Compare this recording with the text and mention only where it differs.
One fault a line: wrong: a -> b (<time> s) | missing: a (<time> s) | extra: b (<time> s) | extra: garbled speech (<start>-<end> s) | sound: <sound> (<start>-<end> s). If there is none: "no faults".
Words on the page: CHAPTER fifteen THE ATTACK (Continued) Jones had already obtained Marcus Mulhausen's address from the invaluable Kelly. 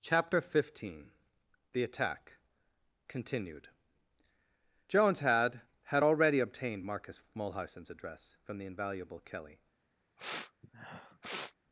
extra: had (5.9 s)
sound: sniff (10.2-11.6 s)